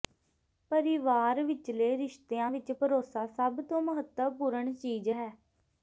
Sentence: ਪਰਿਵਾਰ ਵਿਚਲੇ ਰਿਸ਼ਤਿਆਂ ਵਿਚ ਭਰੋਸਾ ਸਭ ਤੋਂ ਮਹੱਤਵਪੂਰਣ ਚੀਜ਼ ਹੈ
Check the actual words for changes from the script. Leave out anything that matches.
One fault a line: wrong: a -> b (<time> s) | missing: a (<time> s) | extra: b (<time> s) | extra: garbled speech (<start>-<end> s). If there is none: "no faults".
no faults